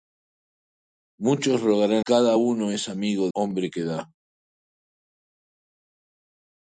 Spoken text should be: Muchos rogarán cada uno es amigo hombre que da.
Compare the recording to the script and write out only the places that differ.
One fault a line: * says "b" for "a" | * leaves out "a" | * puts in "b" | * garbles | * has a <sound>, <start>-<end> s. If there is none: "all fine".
all fine